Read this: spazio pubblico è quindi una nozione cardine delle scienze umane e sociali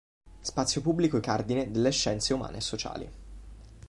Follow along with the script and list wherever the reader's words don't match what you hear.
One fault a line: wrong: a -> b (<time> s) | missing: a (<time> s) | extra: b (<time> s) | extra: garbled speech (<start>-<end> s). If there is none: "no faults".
missing: quindi una nozione (1.2 s)